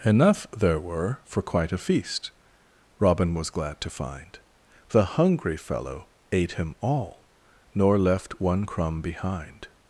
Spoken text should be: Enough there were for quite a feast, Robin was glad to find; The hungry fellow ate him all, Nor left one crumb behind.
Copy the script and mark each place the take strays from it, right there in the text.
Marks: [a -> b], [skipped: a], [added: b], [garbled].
Enough there were for quite a feast, Robin was glad to find; The hungry fellow ate him all, Nor left one crumb behind.